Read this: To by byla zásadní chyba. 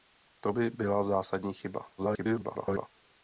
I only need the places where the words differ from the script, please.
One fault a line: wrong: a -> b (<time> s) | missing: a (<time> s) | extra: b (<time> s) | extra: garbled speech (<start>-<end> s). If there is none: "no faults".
extra: garbled speech (2.0-2.9 s)